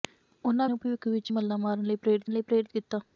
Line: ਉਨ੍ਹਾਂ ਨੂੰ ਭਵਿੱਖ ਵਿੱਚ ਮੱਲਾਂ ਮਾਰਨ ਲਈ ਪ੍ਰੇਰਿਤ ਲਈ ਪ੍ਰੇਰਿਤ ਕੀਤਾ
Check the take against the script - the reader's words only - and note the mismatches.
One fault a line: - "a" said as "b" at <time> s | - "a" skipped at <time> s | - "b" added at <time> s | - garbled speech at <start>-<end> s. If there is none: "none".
none